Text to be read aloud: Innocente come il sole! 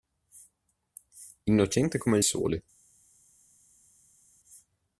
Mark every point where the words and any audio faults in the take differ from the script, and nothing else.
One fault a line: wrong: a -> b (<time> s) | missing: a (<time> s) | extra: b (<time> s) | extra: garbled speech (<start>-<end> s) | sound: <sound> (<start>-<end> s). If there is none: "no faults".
no faults